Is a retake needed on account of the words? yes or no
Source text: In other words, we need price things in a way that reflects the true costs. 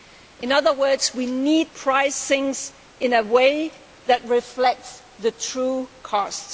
no